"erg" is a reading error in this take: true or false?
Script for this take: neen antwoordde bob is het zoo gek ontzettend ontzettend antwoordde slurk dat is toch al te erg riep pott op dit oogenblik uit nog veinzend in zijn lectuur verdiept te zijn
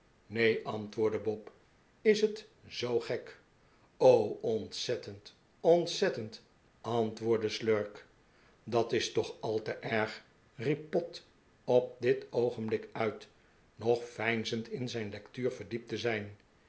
false